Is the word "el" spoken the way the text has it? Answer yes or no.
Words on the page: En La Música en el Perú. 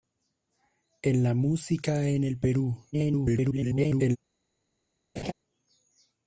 yes